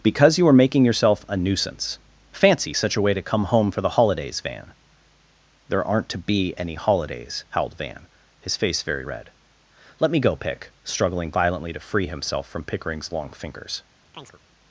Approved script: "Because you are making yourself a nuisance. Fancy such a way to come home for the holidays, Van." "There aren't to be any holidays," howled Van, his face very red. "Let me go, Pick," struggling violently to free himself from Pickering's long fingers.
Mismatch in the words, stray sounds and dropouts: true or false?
true